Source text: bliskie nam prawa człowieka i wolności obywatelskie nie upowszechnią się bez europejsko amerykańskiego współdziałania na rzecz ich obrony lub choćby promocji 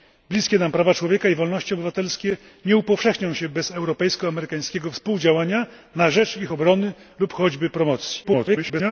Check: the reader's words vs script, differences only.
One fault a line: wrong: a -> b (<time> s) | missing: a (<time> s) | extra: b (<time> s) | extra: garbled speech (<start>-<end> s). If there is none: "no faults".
extra: garbled speech (8.2-8.9 s)